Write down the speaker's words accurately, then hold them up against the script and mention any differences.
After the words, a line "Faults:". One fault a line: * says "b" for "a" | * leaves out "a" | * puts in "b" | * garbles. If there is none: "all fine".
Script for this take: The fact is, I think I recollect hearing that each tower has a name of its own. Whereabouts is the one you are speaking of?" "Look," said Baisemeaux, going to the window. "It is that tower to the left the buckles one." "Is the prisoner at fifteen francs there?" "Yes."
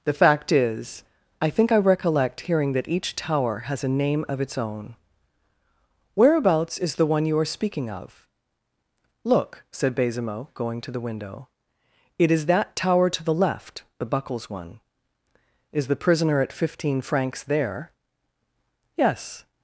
The fact is, I think I recollect hearing that each tower has a name of its own. Whereabouts is the one you are speaking of?" "Look," said Baisemeaux, going to the window. "It is that tower to the left the buckles one." "Is the prisoner at fifteen francs there?" "Yes."
Faults:
all fine